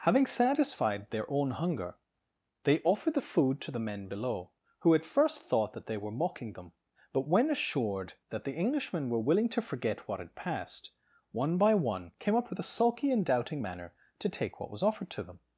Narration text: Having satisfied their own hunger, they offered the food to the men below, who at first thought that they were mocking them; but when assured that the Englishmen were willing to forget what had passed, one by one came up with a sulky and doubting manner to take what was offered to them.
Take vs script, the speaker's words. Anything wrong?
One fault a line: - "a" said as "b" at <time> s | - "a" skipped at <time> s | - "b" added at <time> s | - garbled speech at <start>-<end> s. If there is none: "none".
none